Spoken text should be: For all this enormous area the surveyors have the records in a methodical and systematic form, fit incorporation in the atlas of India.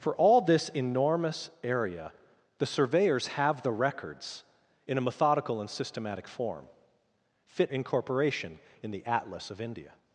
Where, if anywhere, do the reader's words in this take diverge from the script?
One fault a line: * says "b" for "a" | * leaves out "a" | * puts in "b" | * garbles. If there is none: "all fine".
all fine